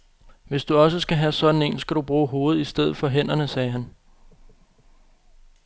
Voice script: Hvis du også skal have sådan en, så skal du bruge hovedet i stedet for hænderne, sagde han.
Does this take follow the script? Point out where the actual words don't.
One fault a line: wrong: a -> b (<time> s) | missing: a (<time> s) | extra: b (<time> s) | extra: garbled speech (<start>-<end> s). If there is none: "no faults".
missing: så (1.8 s)